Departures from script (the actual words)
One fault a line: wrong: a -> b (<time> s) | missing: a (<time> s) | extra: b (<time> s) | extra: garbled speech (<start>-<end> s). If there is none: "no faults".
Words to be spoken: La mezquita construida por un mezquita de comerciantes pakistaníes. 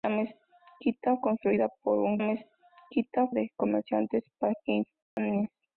no faults